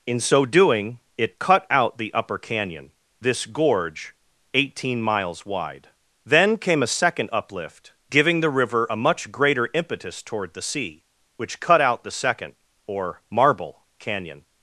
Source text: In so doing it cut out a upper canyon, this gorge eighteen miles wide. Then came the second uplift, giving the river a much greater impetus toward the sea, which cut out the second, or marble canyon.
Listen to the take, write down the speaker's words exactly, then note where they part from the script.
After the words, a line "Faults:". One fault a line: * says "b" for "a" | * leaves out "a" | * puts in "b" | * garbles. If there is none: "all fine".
In so doing it cut out the upper canyon, this gorge eighteen miles wide. Then came a second uplift, giving the river a much greater impetus toward the sea, which cut out the second, or marble canyon.
Faults:
* says "the" for "a"
* says "a" for "the"